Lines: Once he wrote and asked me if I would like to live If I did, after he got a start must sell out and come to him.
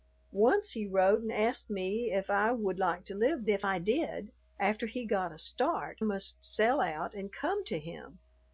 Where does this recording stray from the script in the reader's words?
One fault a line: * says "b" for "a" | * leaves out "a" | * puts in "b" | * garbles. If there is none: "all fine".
all fine